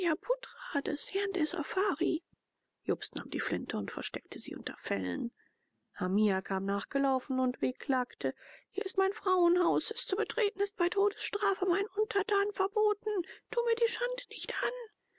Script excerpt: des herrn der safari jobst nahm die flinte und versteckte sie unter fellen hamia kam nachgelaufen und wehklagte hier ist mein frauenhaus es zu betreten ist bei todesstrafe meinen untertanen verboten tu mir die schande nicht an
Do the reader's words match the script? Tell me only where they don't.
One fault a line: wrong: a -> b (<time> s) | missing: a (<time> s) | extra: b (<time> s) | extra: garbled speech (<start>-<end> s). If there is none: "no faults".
no faults